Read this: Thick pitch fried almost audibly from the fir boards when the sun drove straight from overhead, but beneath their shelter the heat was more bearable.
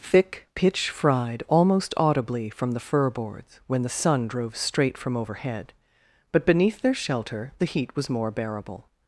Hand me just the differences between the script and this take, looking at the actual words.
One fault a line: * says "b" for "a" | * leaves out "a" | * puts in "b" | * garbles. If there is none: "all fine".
all fine